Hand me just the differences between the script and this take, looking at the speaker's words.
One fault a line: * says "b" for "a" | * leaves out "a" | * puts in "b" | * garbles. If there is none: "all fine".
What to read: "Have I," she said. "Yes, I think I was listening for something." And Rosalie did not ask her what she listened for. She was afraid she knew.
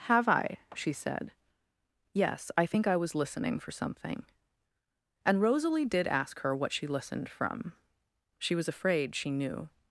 * leaves out "not"
* says "from" for "for"